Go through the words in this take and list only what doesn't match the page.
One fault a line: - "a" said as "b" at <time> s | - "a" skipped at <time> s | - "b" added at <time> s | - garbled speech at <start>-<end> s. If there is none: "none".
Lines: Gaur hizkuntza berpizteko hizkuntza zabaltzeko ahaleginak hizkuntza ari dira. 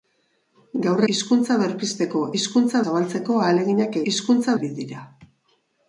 none